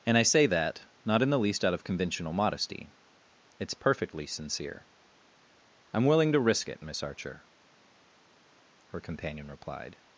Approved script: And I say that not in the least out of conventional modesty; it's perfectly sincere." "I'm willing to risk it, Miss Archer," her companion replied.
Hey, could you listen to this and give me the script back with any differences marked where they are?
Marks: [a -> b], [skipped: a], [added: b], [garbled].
And I say that not in the least out of conventional modesty; it's perfectly sincere." "I'm willing to risk it, Miss Archer," her companion replied.